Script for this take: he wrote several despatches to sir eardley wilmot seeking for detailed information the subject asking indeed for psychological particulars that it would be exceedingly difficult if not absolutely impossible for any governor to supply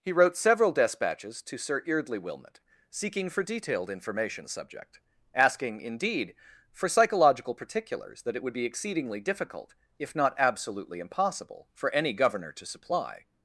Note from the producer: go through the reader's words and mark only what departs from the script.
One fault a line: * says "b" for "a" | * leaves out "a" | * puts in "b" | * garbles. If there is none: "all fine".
all fine